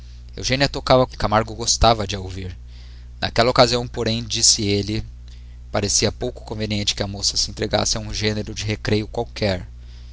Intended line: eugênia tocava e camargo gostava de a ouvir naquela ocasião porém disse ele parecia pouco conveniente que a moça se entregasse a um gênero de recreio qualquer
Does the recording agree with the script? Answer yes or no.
yes